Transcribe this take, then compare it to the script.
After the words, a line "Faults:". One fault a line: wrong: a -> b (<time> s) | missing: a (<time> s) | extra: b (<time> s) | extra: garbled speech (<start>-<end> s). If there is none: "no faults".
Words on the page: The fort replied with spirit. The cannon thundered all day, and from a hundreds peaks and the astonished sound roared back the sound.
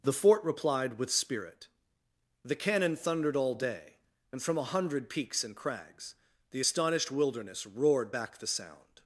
The fort replied with spirit. The cannon thundered all day, and from a hundred peaks and crags the astonished wilderness roared back the sound.
Faults:
wrong: hundreds -> hundred (4.6 s)
extra: crags (5.5 s)
wrong: sound -> wilderness (7.1 s)